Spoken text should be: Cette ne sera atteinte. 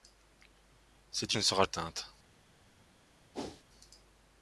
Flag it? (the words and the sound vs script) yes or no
yes